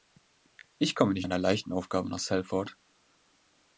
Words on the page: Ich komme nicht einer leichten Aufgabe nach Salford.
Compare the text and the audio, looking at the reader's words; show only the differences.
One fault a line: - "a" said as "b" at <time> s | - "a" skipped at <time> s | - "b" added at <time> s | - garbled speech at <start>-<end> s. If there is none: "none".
none